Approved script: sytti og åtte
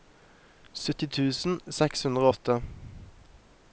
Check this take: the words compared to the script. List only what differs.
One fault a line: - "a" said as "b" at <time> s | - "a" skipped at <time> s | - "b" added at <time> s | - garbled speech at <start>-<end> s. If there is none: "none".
- "tusen seks hundre" added at 1.2 s